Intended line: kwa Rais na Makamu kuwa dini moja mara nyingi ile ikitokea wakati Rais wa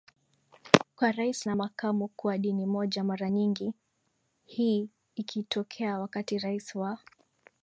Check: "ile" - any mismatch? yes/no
yes